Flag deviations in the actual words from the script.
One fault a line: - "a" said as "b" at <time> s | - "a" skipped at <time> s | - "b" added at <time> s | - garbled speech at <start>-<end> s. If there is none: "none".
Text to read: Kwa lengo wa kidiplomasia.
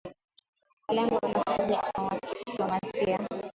none